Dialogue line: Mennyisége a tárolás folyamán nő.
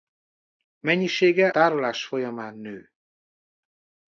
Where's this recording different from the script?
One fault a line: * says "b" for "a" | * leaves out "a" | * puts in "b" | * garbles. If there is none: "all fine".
* leaves out "a"